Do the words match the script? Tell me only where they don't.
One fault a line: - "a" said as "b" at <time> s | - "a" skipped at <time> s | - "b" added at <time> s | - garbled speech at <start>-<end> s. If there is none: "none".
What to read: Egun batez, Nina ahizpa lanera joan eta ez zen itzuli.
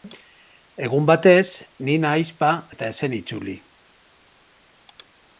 - "lanera joan" skipped at 2.5 s